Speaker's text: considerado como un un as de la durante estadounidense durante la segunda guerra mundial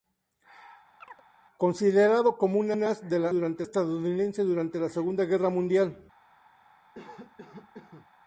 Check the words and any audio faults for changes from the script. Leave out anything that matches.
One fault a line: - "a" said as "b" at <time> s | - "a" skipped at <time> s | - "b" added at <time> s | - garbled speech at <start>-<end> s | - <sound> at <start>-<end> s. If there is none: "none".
- chirp at 1.0-1.2 s
- cough at 6.9-8.1 s